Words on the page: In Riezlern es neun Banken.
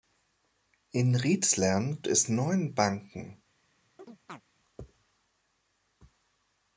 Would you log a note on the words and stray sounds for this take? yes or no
yes